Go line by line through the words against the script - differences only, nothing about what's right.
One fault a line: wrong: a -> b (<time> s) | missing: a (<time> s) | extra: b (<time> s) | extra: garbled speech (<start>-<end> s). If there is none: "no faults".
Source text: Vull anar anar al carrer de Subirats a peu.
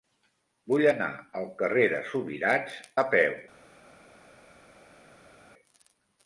missing: anar (1.1 s)